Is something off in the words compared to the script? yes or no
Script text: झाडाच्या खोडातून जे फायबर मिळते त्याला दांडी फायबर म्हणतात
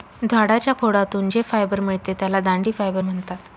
no